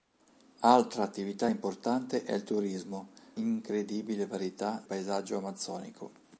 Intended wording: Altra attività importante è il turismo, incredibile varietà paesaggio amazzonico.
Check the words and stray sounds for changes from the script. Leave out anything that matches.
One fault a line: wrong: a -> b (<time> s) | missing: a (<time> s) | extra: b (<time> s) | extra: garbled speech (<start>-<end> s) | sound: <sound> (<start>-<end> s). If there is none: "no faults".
no faults